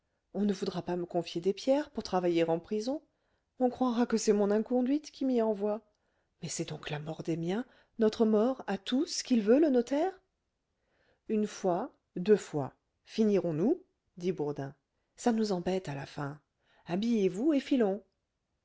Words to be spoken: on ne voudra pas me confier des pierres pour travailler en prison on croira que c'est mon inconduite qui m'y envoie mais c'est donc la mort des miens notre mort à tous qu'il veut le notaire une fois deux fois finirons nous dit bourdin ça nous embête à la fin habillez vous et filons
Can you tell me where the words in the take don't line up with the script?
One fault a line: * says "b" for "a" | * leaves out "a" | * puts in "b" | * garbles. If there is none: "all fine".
all fine